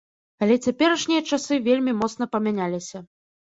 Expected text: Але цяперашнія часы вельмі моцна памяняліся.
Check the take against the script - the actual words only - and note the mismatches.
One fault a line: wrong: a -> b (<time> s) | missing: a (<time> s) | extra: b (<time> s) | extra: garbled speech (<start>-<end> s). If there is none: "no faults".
no faults